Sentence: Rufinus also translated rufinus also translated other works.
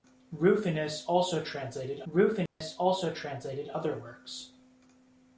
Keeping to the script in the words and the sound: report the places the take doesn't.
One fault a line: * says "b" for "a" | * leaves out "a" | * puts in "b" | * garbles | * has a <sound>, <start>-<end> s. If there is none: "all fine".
* has a dropout, 2.5-2.6 s